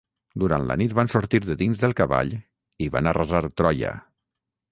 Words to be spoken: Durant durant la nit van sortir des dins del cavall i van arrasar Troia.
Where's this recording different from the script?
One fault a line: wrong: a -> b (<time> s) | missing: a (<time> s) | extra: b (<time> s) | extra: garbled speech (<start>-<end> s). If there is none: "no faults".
missing: durant (0.6 s)
wrong: des -> de (1.4 s)